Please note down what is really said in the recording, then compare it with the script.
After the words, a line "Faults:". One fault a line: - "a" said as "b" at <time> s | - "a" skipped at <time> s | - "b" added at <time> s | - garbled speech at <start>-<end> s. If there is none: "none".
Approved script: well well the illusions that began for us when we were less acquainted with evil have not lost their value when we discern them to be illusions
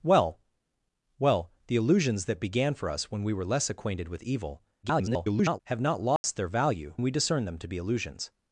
well well the illusions that began for us when we were less acquainted with evil [garbled] have not lost their value we discern them to be illusions
Faults:
- garbled speech at 4.8-5.6 s
- "when" skipped at 6.9 s